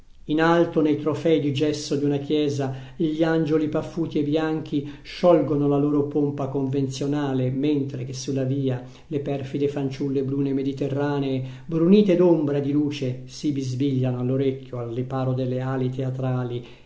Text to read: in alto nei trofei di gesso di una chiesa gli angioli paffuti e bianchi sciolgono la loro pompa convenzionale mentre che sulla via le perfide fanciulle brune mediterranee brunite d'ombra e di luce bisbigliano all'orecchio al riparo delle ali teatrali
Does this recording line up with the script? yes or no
no